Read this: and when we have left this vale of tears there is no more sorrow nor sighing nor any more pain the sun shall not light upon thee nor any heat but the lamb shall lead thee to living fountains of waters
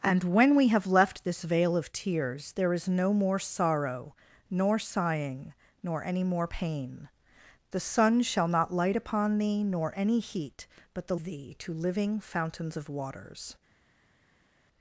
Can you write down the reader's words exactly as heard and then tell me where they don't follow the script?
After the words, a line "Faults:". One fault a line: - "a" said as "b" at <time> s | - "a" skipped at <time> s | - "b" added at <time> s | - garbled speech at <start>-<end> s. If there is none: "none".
and when we have left this vale of tears there is no more sorrow nor sighing nor any more pain the sun shall not light upon thee nor any heat but the thee to living fountains of waters
Faults:
- "lamb shall lead" skipped at 11.2 s